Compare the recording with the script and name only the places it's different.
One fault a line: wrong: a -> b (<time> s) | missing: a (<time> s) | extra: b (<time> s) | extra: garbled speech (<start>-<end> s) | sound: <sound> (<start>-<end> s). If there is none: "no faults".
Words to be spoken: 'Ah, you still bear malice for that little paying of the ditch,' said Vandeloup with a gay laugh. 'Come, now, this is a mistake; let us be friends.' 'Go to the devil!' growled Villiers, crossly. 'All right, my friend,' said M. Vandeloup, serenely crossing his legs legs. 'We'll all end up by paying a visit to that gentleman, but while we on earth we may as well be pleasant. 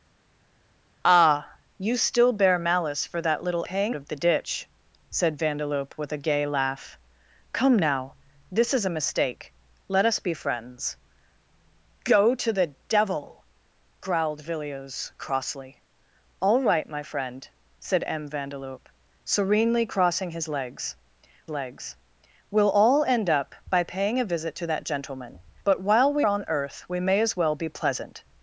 no faults